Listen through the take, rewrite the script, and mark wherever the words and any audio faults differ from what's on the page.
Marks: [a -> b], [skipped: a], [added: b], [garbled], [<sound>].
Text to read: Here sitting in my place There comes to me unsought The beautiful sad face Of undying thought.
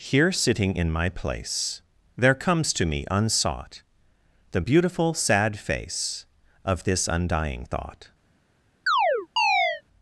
Here sitting in my place There comes to me unsought The beautiful sad face Of [added: this] undying thought. [chirp]